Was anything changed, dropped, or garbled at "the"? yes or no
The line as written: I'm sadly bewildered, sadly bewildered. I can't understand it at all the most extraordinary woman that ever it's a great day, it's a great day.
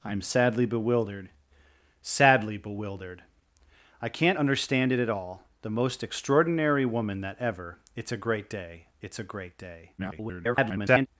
no